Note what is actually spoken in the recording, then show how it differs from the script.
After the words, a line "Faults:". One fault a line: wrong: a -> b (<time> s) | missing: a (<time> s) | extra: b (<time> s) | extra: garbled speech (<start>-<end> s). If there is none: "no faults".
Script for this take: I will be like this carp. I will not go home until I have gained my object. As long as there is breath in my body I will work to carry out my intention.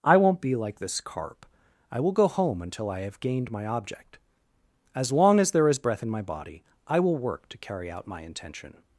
I won't be like this carp. I will go home until I have gained my object. As long as there is breath in my body I will work to carry out my intention.
Faults:
wrong: will -> won't (0.2 s)
missing: not (2.1 s)